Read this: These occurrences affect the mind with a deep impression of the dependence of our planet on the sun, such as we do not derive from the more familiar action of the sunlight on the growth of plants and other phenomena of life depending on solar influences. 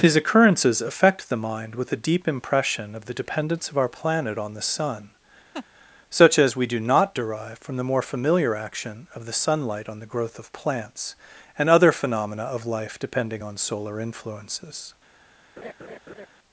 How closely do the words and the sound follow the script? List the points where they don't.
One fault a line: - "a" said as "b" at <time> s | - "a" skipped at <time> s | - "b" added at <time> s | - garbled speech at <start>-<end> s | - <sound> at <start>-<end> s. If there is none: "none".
- laugh at 5.5-5.7 s
- laugh at 15.6-16.3 s